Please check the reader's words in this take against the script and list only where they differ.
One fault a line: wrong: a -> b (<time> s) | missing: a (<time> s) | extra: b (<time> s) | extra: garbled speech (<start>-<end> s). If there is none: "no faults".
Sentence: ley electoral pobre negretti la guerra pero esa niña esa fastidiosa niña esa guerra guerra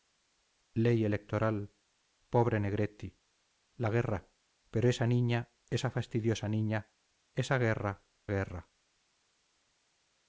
no faults